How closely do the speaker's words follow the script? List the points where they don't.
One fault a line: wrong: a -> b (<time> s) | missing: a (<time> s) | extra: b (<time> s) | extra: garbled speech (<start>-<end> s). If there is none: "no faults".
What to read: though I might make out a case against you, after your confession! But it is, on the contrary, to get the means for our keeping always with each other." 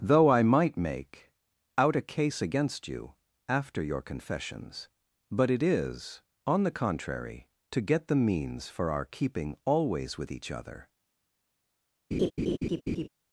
wrong: confession -> confessions (4.0 s)